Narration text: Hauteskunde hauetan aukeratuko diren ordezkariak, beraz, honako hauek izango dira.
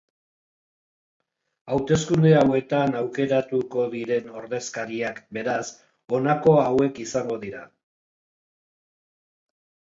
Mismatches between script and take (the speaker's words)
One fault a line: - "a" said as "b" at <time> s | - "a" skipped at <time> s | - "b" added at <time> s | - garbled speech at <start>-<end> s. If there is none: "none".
none